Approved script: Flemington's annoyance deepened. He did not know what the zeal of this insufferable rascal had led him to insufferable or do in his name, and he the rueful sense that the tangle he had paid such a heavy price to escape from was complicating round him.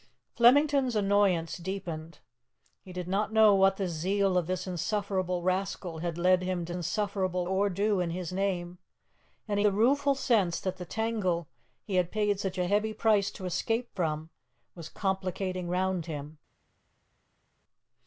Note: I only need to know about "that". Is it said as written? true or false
true